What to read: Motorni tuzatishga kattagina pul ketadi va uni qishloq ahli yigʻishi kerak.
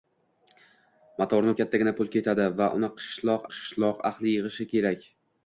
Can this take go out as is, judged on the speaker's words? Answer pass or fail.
fail